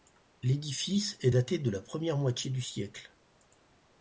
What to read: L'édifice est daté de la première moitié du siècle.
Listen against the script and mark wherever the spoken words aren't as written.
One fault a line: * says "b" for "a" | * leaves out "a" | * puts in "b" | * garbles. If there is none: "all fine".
all fine